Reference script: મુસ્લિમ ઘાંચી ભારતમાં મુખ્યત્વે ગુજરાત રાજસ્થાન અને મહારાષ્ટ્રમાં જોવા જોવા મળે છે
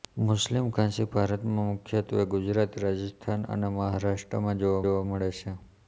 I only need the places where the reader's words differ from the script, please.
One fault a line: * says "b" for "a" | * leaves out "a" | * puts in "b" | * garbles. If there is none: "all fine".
all fine